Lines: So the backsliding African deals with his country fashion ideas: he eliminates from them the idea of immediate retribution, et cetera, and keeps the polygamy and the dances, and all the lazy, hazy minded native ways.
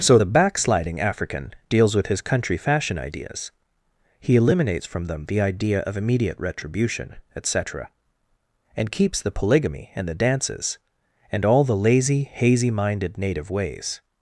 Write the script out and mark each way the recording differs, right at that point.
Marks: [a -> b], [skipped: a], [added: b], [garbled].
So the backsliding African deals with his country fashion ideas: he eliminates from them the idea of immediate retribution, et cetera, and keeps the polygamy and the dances, and all the lazy, hazy minded native ways.